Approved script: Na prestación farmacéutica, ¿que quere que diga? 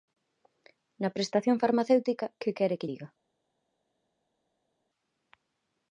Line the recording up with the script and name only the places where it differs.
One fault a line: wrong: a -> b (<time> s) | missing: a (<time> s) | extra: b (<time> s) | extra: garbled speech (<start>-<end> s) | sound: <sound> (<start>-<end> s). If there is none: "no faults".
no faults